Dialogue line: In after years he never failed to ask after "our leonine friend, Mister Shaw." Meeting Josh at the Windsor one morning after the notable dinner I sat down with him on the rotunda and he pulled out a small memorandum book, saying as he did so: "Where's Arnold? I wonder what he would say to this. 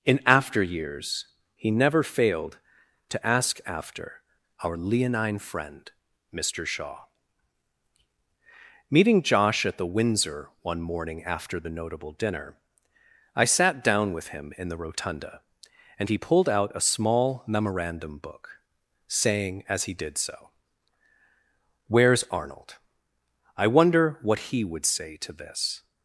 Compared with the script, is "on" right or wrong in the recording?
wrong